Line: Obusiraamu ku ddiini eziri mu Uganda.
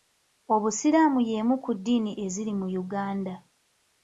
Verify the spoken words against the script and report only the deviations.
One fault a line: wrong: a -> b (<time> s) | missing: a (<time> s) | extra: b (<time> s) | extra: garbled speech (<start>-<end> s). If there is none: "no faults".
extra: y'emu (1.3 s)